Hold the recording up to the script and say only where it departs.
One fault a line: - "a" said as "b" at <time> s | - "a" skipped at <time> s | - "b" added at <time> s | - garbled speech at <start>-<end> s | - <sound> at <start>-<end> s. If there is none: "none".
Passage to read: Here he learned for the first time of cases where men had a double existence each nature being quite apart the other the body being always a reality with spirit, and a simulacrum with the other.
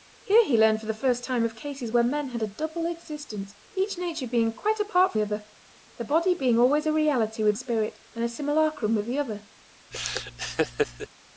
- laugh at 9.9-11.1 s